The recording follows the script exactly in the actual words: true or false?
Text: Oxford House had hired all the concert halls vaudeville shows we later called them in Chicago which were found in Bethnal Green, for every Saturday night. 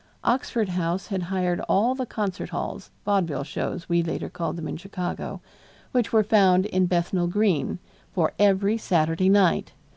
true